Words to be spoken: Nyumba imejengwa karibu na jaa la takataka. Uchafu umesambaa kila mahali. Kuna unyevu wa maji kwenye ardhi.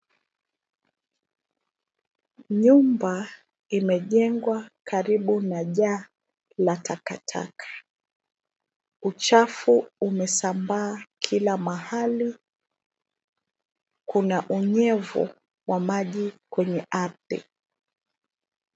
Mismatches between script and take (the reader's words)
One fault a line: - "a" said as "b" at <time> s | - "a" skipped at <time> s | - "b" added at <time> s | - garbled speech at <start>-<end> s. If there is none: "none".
none